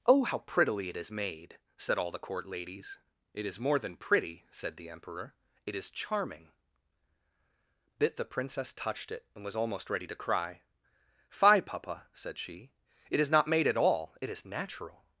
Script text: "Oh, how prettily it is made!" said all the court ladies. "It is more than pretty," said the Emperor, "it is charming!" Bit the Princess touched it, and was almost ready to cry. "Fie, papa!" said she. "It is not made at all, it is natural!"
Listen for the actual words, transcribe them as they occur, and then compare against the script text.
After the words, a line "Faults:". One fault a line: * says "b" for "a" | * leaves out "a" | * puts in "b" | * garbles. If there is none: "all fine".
"Oh, how prettily it is made!" said all the court ladies. "It is more than pretty," said the Emperor, "it is charming!" Bit the Princess touched it, and was almost ready to cry. "Fie, papa!" said she. "It is not made at all, it is natural!"
Faults:
all fine